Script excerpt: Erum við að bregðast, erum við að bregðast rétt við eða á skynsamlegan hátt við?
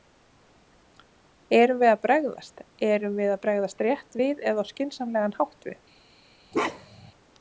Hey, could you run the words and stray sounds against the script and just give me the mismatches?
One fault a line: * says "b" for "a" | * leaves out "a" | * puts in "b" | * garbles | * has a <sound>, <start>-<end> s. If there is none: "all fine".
* has a bark, 6.5-7.1 s